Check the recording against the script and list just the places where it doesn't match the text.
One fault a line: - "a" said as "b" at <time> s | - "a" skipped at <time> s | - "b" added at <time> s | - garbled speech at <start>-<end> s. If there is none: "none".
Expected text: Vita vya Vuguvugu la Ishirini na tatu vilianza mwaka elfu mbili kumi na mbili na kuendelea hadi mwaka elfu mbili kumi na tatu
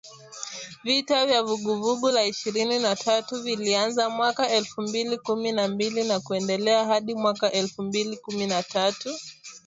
none